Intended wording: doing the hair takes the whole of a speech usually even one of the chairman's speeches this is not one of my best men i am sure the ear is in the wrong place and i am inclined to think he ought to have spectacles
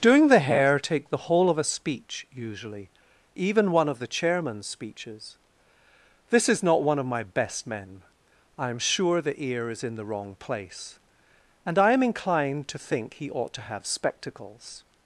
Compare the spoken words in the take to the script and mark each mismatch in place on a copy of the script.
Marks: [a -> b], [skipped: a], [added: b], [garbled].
doing the hair [takes -> take] the whole of a speech usually even one of the chairman's speeches this is not one of my best men i am sure the ear is in the wrong place and i am inclined to think he ought to have spectacles